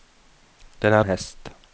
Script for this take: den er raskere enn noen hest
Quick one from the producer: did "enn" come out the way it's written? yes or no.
no